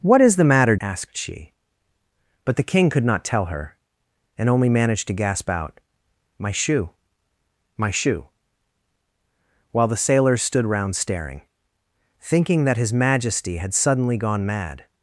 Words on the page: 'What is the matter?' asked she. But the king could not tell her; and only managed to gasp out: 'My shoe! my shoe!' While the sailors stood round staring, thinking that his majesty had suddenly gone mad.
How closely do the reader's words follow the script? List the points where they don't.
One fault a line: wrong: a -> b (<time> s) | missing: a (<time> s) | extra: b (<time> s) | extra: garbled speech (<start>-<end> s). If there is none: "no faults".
no faults